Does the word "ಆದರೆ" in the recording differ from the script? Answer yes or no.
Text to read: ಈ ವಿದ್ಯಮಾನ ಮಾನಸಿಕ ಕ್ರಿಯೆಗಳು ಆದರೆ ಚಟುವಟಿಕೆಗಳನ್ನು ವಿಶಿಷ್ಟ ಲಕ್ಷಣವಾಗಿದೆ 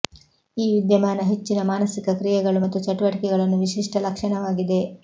yes